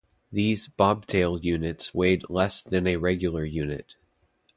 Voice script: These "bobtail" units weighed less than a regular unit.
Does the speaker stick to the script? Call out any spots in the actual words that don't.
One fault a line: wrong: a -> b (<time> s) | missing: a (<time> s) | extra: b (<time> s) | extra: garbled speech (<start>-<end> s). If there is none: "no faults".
no faults